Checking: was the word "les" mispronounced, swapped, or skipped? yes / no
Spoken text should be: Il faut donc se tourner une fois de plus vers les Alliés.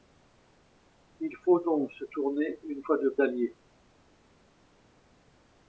yes